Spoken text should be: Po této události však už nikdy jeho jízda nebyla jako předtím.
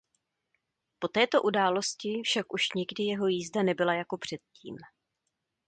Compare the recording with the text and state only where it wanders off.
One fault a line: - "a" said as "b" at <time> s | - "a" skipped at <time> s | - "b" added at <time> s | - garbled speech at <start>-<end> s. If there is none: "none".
none